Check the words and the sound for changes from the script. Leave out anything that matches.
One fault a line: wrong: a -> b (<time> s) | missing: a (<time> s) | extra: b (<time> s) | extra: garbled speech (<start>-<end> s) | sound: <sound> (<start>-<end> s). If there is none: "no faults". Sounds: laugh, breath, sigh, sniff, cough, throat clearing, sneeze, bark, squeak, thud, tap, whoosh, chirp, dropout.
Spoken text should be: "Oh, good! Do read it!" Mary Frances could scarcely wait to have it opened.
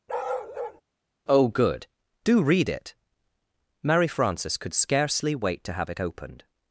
sound: bark (0.1-0.8 s)